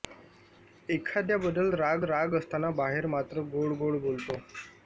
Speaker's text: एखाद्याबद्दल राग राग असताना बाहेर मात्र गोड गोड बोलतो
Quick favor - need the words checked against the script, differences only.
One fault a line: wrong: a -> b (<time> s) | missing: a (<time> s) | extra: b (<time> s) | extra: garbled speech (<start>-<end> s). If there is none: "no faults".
no faults